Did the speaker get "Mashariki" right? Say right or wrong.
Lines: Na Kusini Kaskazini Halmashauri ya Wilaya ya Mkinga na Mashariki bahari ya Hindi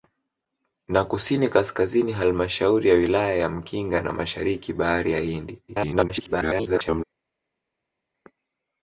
right